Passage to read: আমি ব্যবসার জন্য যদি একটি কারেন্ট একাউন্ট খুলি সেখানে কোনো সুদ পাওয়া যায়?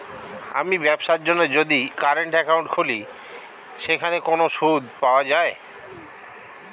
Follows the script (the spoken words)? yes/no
no